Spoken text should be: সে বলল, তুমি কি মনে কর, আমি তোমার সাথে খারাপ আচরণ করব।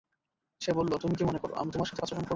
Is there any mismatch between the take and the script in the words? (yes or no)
yes